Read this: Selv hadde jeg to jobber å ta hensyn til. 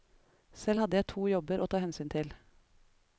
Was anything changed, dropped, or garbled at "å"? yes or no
no